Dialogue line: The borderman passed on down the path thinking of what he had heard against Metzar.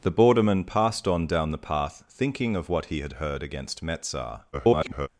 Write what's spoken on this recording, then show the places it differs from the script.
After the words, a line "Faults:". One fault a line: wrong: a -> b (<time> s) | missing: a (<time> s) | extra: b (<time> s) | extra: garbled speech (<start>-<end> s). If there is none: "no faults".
The borderman passed on down the path thinking of what he had heard against Metzar. [garbled]
Faults:
extra: garbled speech (4.5-5.1 s)